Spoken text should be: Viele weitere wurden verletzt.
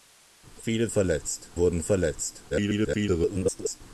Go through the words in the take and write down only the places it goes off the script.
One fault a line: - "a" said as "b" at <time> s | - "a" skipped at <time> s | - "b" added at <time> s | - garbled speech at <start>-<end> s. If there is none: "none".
- "weitere" said as "verletzt" at 0.9 s
- garbled speech at 2.5-3.8 s